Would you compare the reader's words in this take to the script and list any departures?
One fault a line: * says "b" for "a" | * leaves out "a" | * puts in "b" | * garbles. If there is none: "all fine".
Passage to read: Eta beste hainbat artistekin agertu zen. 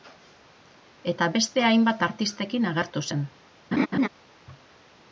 all fine